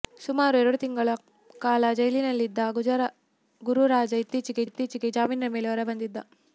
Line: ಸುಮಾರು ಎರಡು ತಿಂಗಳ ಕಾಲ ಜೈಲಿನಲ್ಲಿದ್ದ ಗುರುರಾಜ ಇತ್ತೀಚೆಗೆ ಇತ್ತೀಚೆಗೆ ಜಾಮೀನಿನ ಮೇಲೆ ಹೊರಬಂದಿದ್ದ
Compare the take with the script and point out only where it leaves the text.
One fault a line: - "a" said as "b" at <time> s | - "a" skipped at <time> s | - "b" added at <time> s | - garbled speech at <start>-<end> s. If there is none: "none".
none